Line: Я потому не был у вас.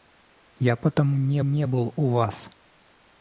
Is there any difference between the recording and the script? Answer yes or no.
yes